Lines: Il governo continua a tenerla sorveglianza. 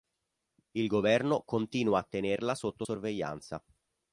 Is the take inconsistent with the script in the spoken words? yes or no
yes